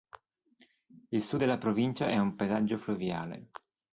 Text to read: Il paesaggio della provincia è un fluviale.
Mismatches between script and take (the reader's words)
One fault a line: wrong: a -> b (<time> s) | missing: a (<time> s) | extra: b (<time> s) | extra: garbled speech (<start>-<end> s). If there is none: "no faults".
wrong: paesaggio -> sud (1.2 s)
extra: paesaggio (2.3 s)